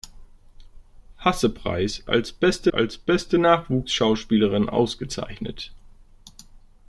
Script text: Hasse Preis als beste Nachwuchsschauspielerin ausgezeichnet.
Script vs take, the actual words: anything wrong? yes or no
yes